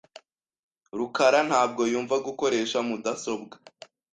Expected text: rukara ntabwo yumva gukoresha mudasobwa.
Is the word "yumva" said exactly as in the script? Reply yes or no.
yes